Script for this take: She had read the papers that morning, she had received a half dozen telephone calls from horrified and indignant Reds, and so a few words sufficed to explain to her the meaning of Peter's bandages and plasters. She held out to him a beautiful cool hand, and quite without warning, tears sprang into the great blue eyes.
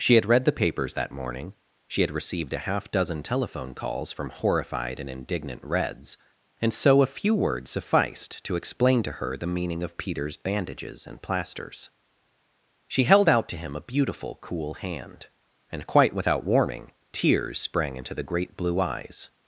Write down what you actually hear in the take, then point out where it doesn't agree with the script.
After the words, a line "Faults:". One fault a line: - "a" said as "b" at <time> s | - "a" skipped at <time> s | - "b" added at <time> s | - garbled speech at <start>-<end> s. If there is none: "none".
She had read the papers that morning, she had received a half dozen telephone calls from horrified and indignant Reds, and so a few words sufficed to explain to her the meaning of Peter's bandages and plasters. She held out to him a beautiful cool hand, and quite without warning, tears sprang into the great blue eyes.
Faults:
none